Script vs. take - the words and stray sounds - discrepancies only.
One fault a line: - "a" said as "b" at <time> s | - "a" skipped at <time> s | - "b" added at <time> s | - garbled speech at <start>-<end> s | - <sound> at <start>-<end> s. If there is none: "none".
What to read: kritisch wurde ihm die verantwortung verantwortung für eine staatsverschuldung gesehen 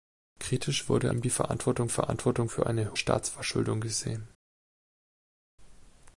none